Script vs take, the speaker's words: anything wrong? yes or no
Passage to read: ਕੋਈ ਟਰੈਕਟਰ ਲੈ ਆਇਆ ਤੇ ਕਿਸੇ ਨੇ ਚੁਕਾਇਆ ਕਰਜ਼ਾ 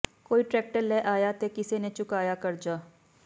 no